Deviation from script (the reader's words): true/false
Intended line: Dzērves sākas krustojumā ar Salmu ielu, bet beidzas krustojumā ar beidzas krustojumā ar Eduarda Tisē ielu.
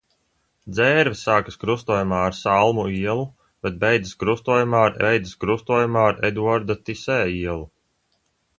false